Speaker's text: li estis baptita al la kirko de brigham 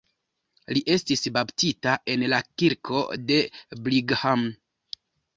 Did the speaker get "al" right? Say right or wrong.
wrong